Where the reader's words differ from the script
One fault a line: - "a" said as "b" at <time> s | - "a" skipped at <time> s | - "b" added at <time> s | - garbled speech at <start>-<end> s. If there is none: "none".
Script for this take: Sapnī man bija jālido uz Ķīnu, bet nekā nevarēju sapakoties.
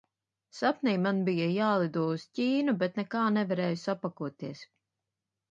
none